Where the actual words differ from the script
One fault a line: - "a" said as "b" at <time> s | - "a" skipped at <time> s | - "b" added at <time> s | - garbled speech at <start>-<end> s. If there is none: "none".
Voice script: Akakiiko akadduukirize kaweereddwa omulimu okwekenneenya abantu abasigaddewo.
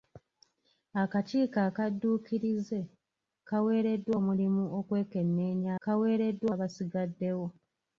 - "abantu" said as "kaweereddwa" at 5.8 s